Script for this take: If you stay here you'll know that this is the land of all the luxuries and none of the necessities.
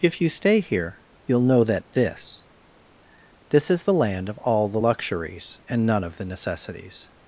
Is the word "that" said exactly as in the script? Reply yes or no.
yes